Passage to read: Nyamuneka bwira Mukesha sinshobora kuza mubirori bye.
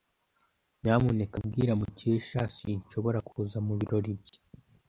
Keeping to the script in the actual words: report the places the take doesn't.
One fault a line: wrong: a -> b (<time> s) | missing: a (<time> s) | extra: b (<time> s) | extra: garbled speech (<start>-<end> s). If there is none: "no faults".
no faults